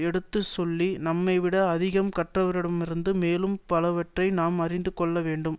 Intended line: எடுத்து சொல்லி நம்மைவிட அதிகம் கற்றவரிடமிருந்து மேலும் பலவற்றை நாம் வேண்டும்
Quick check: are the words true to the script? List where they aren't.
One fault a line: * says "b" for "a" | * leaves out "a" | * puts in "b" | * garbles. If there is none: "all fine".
* puts in "அறிந்து கொள்ள"